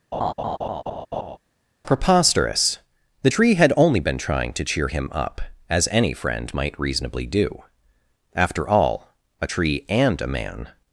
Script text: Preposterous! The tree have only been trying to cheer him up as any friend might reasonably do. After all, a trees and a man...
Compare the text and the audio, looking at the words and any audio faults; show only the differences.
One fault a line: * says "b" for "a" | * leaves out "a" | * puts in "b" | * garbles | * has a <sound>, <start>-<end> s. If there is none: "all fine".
* has a laugh, 0.1-1.4 s
* says "had" for "have"
* says "tree" for "trees"